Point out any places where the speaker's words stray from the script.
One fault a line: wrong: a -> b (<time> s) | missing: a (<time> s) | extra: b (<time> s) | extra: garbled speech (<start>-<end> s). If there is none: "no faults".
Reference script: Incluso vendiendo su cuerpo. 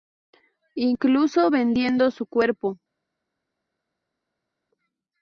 no faults